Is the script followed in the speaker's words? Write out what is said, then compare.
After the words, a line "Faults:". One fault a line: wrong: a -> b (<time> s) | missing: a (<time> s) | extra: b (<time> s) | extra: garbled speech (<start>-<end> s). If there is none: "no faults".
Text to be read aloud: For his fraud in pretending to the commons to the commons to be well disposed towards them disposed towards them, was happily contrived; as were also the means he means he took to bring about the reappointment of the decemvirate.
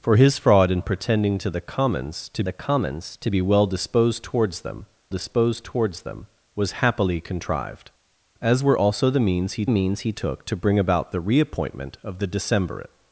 For his fraud in pretending to the commons to the commons to be well disposed towards them disposed towards them, was happily contrived; as were also the means he means he took to bring about the reappointment of the decemvirate.
Faults:
no faults